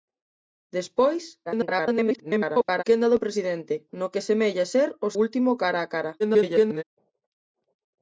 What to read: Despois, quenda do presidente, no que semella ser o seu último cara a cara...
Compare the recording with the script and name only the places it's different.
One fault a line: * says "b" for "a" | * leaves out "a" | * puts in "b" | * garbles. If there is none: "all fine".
* garbles
* leaves out "seu"
* garbles